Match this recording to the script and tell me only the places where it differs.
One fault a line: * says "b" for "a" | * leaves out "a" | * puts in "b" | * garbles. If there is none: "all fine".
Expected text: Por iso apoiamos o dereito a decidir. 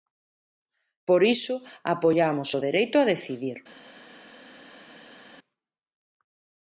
all fine